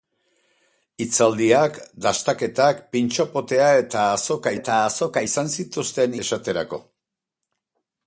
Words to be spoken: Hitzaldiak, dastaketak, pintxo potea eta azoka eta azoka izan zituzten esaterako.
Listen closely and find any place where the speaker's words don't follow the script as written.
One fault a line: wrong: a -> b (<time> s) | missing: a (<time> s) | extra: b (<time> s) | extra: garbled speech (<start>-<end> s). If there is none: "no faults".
no faults